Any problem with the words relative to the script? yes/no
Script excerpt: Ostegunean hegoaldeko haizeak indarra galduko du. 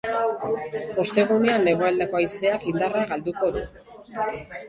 no